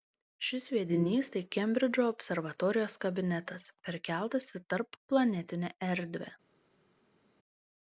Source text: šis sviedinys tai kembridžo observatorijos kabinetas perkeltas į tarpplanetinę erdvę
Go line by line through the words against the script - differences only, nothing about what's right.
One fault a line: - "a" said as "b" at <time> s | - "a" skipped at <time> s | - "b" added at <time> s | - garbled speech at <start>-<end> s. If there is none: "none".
none